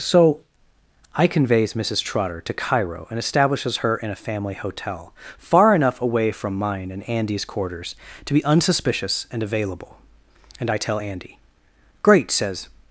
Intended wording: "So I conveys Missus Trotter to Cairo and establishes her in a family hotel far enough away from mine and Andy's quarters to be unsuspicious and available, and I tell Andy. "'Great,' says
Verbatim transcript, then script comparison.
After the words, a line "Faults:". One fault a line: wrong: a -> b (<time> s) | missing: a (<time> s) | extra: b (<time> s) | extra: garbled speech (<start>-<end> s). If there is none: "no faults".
"So I conveys Missus Trotter to Cairo and establishes her in a family hotel far enough away from mine and Andy's quarters to be unsuspicious and available, and I tell Andy. "'Great,' says
Faults:
no faults